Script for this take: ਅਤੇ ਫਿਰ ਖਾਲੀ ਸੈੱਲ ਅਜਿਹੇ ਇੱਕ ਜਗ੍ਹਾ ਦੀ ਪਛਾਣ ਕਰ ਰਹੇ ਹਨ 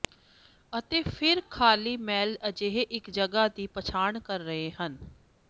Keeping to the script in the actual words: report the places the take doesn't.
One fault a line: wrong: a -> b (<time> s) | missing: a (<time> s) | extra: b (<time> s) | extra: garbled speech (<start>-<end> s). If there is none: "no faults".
no faults